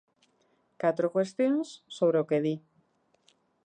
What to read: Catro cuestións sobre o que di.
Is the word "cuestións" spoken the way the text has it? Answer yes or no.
yes